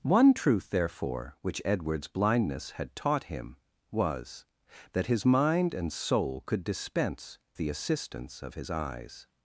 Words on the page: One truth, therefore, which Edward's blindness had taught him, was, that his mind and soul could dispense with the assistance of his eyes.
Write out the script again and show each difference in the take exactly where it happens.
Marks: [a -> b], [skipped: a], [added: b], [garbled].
One truth, therefore, which Edward's blindness had taught him, was, that his mind and soul could dispense [skipped: with] the assistance of his eyes.